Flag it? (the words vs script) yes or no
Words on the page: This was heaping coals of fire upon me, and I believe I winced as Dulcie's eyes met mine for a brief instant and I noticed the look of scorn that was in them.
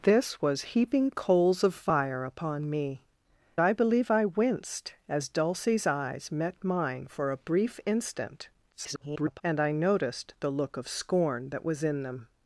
yes